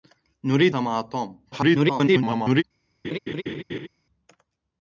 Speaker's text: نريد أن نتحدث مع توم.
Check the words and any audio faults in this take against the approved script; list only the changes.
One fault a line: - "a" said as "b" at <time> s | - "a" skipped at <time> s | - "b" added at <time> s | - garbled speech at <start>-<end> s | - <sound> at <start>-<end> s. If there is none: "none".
- "أن نتحدث" skipped at 0.8 s
- garbled speech at 1.5-2.6 s
- laugh at 3.0-3.9 s